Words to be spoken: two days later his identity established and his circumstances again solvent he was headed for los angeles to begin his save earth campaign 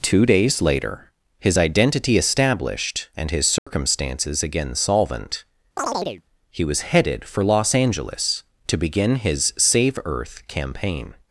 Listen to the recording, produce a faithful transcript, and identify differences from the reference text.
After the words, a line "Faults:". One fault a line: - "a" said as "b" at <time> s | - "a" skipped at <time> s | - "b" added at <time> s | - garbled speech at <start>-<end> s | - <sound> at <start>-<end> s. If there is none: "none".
two days later his identity established and his circumstances again solvent he was headed for los angeles to begin his save earth campaign
Faults:
- dropout at 3.6-3.7 s
- chirp at 5.8-6.2 s